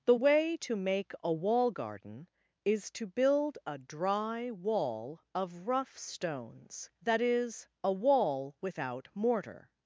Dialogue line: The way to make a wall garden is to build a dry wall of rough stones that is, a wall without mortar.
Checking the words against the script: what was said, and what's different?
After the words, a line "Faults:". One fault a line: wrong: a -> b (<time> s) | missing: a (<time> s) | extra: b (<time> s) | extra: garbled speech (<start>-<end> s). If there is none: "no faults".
The way to make a wall garden is to build a dry wall of rough stones that is, a wall without mortar.
Faults:
no faults